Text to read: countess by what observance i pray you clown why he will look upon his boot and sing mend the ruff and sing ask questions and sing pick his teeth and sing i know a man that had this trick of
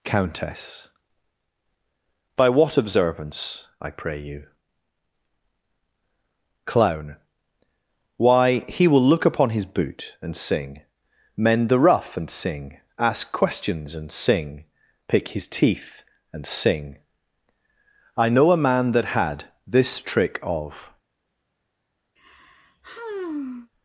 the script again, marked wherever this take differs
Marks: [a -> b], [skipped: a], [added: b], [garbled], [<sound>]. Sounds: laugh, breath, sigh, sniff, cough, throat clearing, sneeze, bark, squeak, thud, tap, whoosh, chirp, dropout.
countess by what observance i pray you clown why he will look upon his boot and sing mend the ruff and sing ask questions and sing pick his teeth and sing i know a man that had this trick of [sigh]